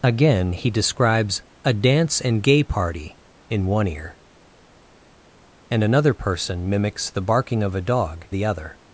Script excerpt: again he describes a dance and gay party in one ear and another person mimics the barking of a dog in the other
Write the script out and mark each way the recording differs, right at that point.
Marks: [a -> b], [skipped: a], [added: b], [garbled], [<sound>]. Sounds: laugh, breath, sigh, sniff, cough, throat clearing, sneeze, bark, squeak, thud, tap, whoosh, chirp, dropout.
again he describes a dance and gay party in one ear and another person mimics the barking of a dog [skipped: in] the other